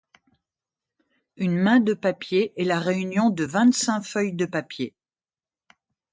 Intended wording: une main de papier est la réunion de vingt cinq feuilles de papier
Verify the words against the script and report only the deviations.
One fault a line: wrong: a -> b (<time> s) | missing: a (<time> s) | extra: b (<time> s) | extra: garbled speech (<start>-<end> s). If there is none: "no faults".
no faults